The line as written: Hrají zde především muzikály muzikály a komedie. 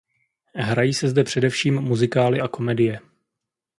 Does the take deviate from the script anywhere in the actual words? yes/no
yes